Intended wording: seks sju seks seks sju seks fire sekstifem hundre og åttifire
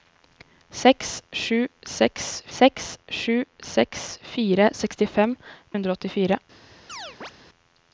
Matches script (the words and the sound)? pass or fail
fail